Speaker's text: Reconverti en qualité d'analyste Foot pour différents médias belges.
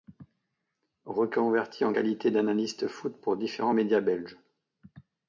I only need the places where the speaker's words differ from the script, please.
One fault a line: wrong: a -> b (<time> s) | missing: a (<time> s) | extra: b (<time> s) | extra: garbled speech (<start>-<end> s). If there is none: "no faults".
no faults